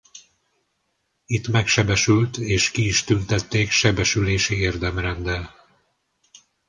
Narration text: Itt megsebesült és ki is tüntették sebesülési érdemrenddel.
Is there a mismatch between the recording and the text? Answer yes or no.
no